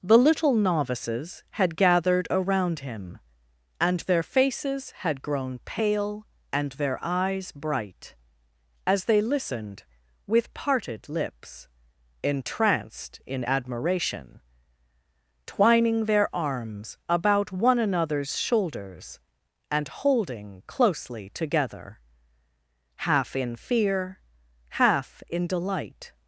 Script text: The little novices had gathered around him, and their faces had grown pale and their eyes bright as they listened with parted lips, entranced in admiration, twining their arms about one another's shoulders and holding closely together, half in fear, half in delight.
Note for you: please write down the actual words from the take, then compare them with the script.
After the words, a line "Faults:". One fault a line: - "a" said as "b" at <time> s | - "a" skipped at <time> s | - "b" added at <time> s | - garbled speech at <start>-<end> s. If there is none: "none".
The little novices had gathered around him, and their faces had grown pale and their eyes bright as they listened with parted lips, entranced in admiration, twining their arms about one another's shoulders and holding closely together, half in fear, half in delight.
Faults:
none